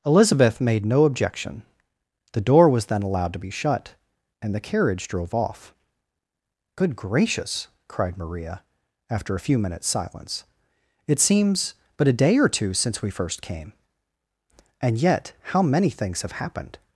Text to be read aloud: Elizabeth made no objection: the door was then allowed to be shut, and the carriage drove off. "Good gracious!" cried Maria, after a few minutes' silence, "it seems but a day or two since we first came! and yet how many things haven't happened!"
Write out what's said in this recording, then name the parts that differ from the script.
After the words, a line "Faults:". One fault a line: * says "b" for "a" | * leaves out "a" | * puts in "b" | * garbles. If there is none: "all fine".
Elizabeth made no objection: the door was then allowed to be shut, and the carriage drove off. "Good gracious!" cried Maria, after a few minutes' silence, "it seems but a day or two since we first came! and yet how many things have happened!"
Faults:
* says "have" for "haven't"